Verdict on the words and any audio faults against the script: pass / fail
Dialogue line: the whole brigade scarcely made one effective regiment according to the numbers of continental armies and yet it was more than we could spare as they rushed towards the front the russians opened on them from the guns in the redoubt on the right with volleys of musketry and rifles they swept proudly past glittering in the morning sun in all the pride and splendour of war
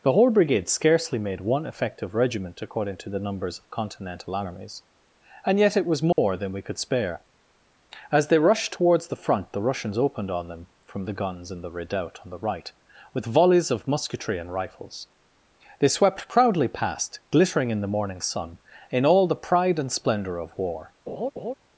fail